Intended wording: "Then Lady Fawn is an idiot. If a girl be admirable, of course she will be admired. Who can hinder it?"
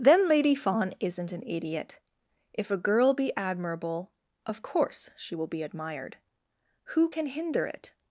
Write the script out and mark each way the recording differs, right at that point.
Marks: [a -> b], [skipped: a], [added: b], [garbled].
"Then Lady Fawn [is -> isn't] an idiot. If a girl be admirable, of course she will be admired. Who can hinder it?"